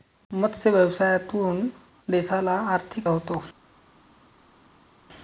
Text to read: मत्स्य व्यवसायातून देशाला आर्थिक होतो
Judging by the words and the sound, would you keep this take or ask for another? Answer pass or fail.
pass